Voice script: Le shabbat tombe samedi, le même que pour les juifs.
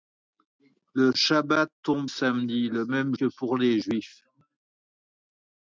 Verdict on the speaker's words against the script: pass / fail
pass